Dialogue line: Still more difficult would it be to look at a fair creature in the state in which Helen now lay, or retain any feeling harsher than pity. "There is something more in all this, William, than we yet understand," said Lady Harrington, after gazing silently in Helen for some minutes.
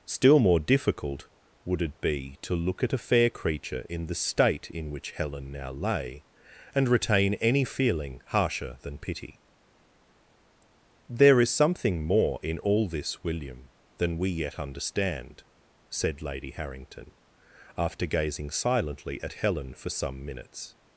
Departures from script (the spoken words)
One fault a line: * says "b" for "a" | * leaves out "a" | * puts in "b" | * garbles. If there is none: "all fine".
* says "and" for "or"
* says "at" for "in"